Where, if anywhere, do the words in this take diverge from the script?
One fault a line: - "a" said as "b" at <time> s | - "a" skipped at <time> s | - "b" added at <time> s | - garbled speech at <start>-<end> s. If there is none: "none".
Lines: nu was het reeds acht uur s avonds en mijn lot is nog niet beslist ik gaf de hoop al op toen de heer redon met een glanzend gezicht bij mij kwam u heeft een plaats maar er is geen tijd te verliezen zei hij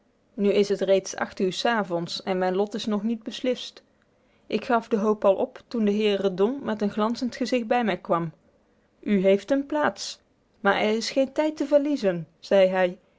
- "was" said as "is" at 0.5 s